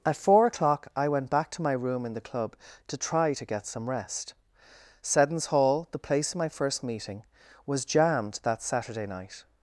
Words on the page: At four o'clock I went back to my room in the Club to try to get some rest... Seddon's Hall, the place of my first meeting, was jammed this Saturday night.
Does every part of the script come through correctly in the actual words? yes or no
no